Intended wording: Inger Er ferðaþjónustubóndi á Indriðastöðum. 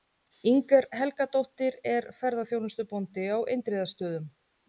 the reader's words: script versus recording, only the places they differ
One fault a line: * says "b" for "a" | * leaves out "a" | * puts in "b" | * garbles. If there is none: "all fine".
* puts in "Helgadóttir"